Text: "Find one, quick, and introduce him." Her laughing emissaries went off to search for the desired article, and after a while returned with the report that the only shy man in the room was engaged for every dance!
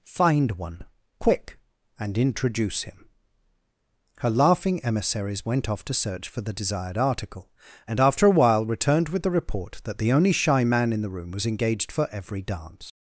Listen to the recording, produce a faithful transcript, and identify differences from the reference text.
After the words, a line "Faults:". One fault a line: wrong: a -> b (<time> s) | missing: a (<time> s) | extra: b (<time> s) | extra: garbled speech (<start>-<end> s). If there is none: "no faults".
"Find one, quick, and introduce him." Her laughing emissaries went off to search for the desired article, and after a while returned with the report that the only shy man in the room was engaged for every dance!
Faults:
no faults